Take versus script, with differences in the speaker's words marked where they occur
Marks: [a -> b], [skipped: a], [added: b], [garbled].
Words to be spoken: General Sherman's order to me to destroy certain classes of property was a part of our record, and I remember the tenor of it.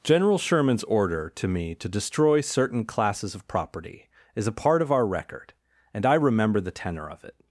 General Sherman's order to me to destroy certain classes of property [was -> is] a part of our record, and I remember the tenor of it.